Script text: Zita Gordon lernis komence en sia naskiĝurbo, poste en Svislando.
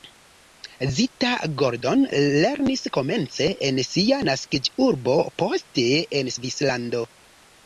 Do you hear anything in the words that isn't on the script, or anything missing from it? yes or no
no